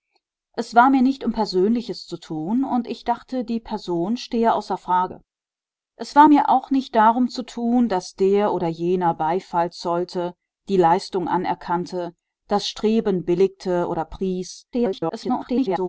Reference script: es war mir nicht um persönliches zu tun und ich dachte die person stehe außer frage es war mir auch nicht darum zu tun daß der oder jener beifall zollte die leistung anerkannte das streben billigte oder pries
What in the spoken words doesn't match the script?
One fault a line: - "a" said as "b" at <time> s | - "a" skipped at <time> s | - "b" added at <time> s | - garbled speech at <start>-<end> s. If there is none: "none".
- garbled speech at 14.7-15.9 s